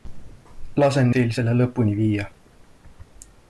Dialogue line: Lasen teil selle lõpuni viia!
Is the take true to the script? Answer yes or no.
yes